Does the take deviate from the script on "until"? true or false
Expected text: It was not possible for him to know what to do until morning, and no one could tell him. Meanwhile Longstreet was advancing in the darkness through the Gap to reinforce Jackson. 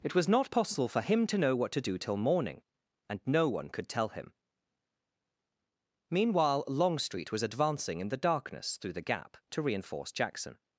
true